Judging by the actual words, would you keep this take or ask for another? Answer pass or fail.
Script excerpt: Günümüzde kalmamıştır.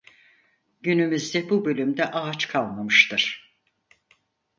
fail